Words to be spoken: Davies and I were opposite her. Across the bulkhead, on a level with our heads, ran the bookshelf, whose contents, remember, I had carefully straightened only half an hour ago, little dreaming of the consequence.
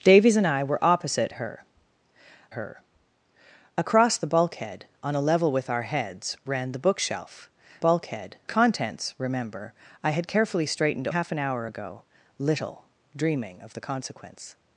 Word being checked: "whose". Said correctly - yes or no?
no